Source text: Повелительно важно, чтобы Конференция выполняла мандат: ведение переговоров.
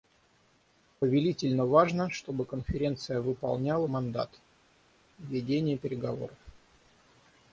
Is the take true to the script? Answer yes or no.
yes